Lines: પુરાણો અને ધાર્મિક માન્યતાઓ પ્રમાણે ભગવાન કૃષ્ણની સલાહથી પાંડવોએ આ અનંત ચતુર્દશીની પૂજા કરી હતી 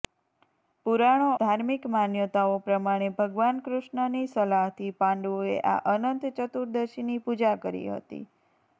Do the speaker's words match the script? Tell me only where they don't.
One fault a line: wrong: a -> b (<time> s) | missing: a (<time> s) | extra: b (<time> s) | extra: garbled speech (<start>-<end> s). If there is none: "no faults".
missing: અને (1.3 s)